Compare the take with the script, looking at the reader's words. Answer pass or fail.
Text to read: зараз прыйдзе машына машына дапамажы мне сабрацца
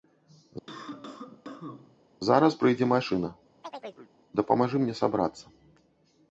fail